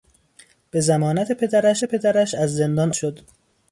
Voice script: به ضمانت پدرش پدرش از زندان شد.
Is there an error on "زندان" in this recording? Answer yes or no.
no